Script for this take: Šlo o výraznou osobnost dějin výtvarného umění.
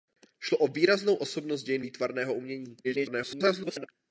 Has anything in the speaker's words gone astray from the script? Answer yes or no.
yes